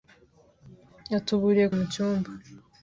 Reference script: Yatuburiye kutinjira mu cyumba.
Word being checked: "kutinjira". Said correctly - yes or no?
no